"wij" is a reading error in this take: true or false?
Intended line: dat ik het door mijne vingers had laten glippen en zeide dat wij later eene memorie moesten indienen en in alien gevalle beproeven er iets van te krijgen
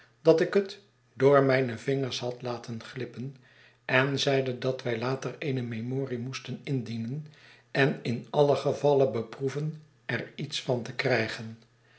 false